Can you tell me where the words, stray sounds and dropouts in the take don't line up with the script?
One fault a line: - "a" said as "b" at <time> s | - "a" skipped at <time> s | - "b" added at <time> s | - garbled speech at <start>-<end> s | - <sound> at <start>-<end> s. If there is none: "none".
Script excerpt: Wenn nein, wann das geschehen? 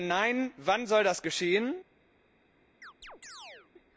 - "soll" added at 0.9 s
- chirp at 2.8-3.7 s